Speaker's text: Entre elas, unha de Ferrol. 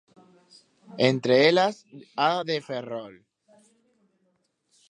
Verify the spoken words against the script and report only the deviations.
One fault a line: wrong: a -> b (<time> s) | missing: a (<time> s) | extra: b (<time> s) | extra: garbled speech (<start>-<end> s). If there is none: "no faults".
wrong: unha -> a (2.2 s)